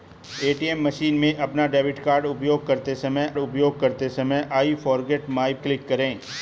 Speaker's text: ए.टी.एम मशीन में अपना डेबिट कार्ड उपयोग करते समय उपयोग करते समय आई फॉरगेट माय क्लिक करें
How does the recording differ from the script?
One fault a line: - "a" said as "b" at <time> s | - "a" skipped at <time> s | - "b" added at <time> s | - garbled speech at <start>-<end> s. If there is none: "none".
none